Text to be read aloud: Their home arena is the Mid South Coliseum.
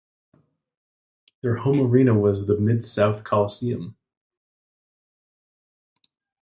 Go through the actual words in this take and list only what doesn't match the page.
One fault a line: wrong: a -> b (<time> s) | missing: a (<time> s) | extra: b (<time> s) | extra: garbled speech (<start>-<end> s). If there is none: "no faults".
wrong: is -> was (2.1 s)